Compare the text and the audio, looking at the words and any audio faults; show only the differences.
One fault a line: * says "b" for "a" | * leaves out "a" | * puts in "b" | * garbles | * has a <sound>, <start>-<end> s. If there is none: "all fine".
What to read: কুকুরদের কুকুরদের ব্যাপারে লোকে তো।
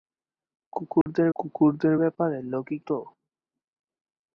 * has a dropout, 1.0-1.1 s